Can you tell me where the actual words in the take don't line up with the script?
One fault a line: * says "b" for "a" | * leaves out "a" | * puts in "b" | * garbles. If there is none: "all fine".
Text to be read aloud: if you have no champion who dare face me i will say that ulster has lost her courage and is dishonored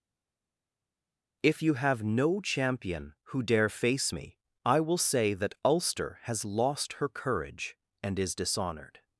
all fine